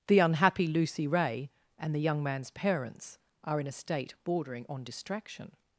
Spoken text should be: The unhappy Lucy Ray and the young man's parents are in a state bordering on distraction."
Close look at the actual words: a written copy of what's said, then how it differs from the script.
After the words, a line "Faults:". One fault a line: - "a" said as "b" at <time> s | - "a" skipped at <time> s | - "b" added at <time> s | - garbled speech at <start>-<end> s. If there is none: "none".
The unhappy Lucy Ray and the young man's parents are in a state bordering on distraction."
Faults:
none